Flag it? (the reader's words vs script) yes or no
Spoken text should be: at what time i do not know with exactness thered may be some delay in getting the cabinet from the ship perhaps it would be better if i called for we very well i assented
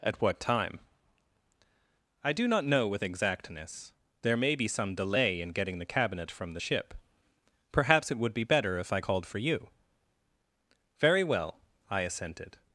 yes